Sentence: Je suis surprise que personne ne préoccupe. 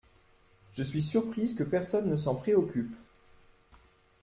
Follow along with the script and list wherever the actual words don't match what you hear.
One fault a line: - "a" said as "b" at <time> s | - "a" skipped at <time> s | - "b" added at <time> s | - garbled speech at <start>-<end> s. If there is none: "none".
- "s'en" added at 2.2 s